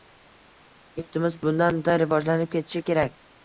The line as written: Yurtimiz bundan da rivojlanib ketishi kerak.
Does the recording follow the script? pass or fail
pass